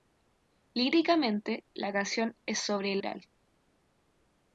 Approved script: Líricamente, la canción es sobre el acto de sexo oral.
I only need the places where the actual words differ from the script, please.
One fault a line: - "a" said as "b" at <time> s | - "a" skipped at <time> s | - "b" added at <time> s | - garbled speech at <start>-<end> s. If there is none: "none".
- "acto de sexo" skipped at 3.0 s